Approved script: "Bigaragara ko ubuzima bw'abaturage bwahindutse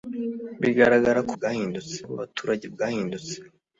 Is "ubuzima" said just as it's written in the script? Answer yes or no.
no